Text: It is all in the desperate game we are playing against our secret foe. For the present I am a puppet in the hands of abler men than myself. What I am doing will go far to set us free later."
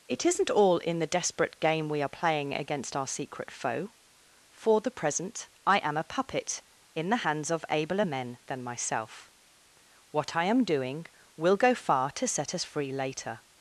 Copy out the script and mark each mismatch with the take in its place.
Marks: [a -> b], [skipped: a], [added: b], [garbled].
It [is -> isn't] all in the desperate game we are playing against our secret foe. For the present I am a puppet in the hands of abler men than myself. What I am doing will go far to set us free later."